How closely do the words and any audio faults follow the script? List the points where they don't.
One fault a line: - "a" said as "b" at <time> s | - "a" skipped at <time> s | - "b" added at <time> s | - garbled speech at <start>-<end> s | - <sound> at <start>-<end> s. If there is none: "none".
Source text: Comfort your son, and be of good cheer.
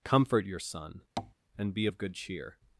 - tap at 1.2-1.3 s